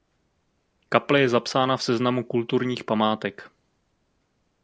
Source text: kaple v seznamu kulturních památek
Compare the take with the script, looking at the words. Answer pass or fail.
fail